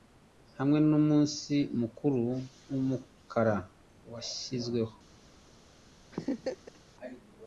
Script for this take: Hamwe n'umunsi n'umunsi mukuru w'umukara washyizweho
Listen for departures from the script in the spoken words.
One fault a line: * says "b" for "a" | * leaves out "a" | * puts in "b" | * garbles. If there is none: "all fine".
* leaves out "n'umunsi"